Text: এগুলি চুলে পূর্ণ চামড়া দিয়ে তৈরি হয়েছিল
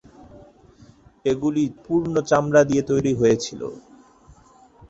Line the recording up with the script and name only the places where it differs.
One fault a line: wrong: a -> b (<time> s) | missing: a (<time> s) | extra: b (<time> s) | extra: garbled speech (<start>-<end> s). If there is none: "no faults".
missing: চুলে (1.6 s)